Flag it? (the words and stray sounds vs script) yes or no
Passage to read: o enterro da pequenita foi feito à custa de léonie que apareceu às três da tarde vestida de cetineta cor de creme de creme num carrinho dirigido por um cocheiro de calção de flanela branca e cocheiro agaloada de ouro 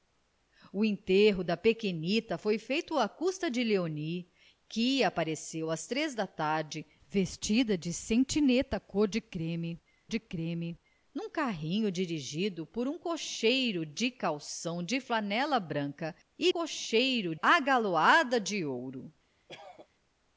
yes